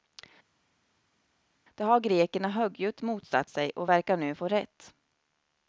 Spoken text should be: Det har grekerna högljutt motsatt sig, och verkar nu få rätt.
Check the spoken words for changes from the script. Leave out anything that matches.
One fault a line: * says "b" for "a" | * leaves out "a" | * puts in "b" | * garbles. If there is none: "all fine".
all fine